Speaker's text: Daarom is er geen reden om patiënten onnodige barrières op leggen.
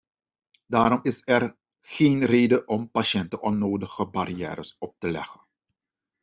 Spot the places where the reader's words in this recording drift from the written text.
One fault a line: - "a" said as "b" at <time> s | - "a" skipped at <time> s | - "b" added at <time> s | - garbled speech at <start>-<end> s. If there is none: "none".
- "te" added at 5.0 s